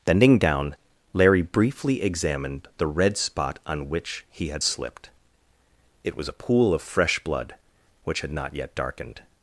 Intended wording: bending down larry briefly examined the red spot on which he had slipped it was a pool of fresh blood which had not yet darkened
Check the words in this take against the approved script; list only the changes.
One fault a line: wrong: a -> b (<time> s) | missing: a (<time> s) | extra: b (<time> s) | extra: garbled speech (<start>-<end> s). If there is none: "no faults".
no faults